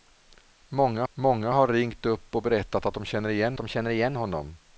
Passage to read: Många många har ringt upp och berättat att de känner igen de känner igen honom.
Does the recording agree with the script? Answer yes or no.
yes